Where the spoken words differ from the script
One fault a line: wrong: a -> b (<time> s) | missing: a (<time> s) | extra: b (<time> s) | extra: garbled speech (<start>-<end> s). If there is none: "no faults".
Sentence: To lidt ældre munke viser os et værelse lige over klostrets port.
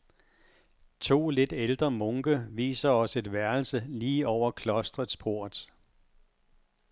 no faults